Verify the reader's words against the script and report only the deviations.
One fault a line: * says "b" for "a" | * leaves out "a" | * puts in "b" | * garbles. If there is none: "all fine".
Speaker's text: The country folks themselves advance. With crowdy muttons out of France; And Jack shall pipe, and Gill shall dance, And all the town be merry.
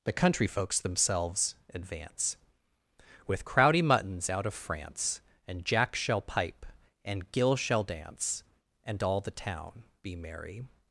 all fine